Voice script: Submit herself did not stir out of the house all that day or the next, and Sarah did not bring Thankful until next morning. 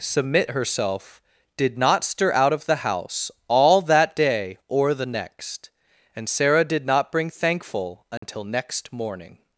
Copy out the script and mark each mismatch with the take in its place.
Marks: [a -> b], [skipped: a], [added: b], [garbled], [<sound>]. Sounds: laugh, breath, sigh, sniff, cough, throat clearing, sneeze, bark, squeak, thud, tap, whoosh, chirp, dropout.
Submit herself did not stir out of the house all that day or the next, and Sarah did not bring Thankful until [dropout] next morning.